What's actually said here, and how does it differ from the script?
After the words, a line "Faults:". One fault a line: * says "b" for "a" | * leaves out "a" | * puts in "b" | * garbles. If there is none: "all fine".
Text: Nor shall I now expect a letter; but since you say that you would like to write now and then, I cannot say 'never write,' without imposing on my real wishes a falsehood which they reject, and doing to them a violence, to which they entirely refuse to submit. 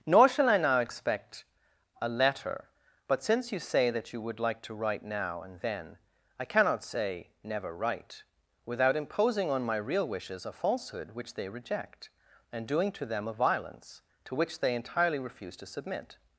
Nor shall I now expect a letter; but since you say that you would like to write now and then, I cannot say 'never write,' without imposing on my real wishes a falsehood which they reject, and doing to them a violence, to which they entirely refuse to submit.
Faults:
all fine